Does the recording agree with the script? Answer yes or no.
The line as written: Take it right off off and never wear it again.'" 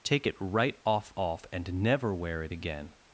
yes